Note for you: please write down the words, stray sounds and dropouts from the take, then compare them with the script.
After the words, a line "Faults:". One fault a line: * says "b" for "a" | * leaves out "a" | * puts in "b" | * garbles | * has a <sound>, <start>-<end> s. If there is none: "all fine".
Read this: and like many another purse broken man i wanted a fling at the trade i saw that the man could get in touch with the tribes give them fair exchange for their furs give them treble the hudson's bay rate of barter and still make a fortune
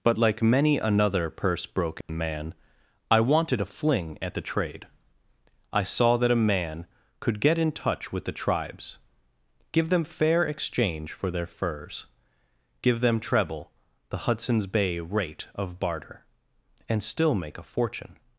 but like many another purse broken man i wanted a fling at the trade i saw that a man could get in touch with the tribes give them fair exchange for their furs give them treble the hudson's bay rate of barter and still make a fortune
Faults:
* says "but" for "and"
* has a dropout, 2.0-2.1 s
* says "a" for "the"